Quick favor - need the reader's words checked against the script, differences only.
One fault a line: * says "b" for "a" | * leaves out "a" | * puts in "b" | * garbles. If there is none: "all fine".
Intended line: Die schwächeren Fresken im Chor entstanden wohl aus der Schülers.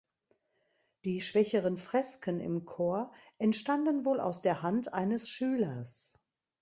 * puts in "Hand eines"